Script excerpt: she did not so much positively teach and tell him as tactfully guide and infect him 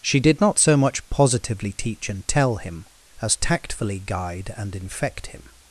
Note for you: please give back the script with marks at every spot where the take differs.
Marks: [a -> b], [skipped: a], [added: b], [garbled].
she did not so much positively teach and tell him as tactfully guide and infect him